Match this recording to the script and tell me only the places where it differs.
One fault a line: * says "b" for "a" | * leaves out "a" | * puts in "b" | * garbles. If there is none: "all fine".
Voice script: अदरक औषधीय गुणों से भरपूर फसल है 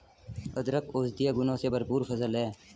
all fine